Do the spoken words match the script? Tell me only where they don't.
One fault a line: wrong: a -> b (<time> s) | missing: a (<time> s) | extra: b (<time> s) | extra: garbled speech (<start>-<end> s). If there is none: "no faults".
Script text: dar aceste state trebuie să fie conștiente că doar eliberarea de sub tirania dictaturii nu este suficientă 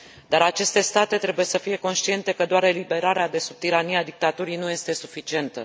no faults